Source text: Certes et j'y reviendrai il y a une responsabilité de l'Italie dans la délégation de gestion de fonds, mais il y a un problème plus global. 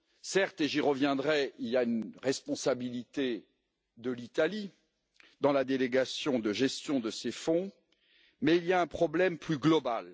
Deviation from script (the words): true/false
true